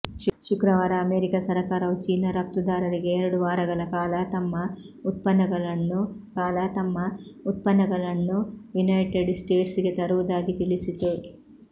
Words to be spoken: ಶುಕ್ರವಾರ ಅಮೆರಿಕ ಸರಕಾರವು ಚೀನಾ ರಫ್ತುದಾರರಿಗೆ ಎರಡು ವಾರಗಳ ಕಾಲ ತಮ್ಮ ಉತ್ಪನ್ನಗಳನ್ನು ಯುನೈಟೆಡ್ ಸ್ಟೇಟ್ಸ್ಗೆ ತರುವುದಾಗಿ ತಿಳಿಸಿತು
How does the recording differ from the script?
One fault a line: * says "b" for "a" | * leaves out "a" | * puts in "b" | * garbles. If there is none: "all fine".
* puts in "ಕಾಲ ತಮ್ಮ ಉತ್ಪನ್ನಗಳನ್ನು"